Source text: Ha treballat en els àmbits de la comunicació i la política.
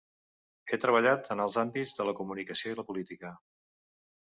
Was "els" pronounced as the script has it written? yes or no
yes